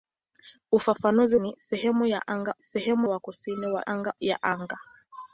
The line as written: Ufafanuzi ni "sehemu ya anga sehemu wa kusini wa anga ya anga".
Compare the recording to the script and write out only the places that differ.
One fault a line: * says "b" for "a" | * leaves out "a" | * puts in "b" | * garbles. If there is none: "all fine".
all fine